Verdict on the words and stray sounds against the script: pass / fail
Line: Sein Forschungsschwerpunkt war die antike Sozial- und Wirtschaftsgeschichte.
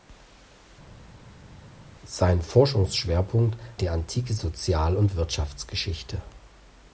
fail